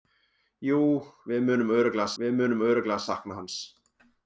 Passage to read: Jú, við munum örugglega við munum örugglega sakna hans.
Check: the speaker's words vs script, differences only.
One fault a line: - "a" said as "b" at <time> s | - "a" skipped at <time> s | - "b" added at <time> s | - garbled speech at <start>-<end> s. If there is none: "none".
none